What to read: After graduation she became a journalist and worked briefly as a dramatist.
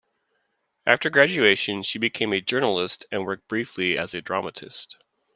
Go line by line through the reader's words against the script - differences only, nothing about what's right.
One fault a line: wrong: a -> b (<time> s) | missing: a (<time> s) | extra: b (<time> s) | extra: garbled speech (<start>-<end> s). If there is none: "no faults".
no faults